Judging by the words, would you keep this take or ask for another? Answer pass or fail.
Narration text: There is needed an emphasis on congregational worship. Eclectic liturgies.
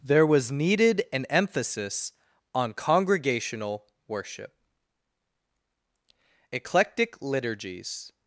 fail